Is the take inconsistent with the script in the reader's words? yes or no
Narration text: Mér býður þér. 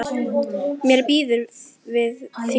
yes